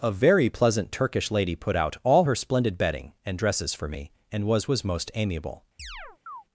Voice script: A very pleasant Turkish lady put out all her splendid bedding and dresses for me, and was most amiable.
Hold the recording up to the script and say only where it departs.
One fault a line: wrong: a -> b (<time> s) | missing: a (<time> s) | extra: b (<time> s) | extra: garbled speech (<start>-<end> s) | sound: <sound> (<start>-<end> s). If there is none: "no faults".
extra: was (4.7 s)
sound: chirp (5.8-6.4 s)